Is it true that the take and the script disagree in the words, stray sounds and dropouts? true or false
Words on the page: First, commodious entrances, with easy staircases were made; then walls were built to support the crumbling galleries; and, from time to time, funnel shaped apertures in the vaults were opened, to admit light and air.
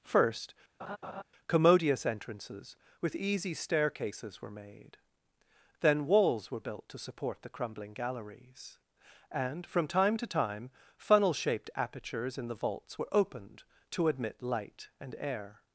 true